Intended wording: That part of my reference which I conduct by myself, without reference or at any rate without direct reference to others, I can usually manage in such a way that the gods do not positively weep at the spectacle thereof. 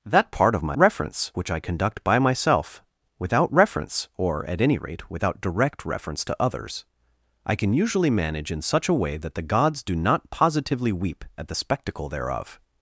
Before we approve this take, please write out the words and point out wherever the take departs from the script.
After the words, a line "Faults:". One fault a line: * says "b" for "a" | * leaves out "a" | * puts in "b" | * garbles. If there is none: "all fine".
That part of my reference which I conduct by myself, without reference or at any rate without direct reference to others, I can usually manage in such a way that the gods do not positively weep at the spectacle thereof.
Faults:
all fine